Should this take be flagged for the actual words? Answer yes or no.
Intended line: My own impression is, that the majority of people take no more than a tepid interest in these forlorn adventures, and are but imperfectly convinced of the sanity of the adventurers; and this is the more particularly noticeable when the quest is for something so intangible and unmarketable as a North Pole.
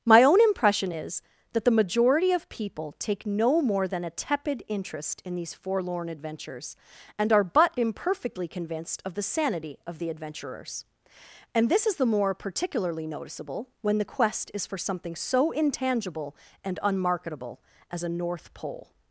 no